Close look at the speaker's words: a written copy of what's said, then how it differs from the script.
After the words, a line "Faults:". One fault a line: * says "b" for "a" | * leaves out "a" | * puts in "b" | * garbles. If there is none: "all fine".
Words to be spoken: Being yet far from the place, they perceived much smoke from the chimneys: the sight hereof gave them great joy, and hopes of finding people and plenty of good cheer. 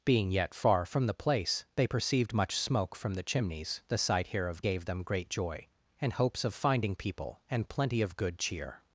Being yet far from the place, they perceived much smoke from the chimneys: the sight hereof gave them great joy, and hopes of finding people and plenty of good cheer.
Faults:
all fine